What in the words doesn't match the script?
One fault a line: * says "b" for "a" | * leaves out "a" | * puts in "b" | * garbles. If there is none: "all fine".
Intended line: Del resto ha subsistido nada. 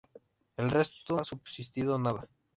all fine